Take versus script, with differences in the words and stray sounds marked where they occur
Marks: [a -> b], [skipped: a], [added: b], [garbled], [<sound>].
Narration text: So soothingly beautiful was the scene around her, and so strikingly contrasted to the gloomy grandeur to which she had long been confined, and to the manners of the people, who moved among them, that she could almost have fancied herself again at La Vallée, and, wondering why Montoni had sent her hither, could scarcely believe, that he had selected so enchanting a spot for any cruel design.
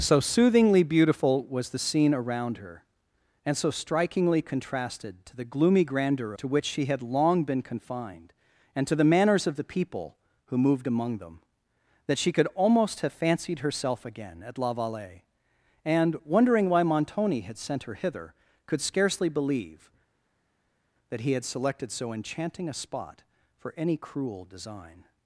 So soothingly beautiful was the scene around her, and so strikingly contrasted to the gloomy grandeur to which she had long been confined, and to the manners of the people, who moved among them, that she could almost have fancied herself again at La Vallée, and, wondering why Montoni had sent her hither, could scarcely believe, that he had selected so enchanting a spot for any cruel design.